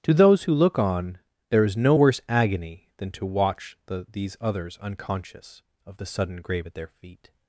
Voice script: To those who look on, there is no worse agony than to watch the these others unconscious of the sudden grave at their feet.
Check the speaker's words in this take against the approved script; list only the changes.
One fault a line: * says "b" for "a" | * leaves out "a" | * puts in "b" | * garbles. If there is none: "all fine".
all fine